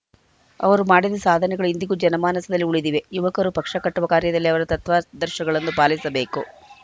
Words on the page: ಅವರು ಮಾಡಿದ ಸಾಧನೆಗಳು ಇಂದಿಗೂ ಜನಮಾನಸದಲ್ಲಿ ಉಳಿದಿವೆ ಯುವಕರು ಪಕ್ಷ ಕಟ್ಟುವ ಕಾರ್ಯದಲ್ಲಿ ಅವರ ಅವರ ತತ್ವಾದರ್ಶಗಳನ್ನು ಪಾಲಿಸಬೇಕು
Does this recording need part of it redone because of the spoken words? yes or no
yes